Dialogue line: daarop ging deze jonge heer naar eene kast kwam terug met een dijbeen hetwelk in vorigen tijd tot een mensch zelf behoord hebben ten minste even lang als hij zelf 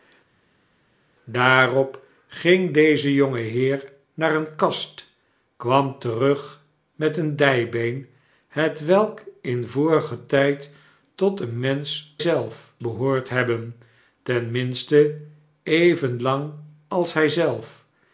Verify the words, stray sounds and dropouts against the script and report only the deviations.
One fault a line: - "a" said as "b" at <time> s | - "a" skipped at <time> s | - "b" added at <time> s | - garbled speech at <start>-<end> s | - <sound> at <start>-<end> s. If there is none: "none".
none